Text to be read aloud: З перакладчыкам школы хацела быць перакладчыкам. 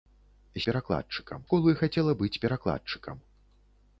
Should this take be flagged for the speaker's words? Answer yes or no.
no